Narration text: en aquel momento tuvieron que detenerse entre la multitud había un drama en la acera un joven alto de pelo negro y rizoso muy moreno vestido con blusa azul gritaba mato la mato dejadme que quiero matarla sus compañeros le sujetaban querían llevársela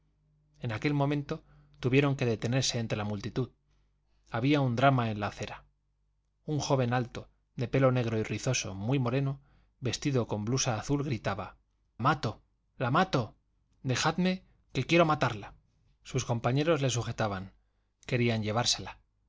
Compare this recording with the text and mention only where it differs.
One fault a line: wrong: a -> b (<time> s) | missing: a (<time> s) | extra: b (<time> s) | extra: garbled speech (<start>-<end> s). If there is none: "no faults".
no faults